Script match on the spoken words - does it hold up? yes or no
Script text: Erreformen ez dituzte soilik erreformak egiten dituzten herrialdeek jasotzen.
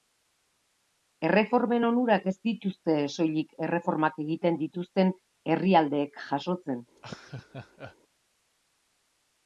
no